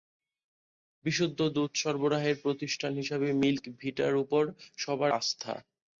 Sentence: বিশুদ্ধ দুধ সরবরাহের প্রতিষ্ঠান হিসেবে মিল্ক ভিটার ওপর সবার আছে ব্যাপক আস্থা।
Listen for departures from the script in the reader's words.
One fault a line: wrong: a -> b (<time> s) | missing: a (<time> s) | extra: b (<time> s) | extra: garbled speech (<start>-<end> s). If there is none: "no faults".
missing: আছে ব্যাপক (5.1 s)